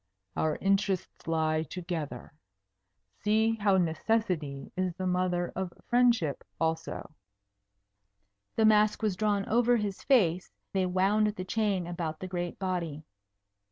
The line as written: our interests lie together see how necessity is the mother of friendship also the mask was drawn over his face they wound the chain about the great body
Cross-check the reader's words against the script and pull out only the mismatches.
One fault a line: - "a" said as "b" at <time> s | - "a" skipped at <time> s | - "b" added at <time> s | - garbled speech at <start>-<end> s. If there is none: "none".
none